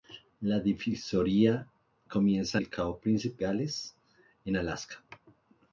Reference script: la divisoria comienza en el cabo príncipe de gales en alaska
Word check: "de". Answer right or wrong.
wrong